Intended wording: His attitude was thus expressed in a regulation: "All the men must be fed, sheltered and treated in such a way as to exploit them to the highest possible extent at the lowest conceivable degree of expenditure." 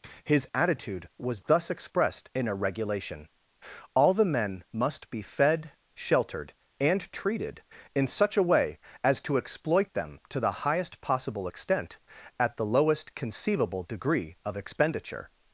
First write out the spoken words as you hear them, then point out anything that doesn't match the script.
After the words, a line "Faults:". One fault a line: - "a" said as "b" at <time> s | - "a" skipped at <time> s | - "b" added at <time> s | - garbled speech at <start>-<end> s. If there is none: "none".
His attitude was thus expressed in a regulation: "All the men must be fed, sheltered and treated in such a way as to exploit them to the highest possible extent at the lowest conceivable degree of expenditure."
Faults:
none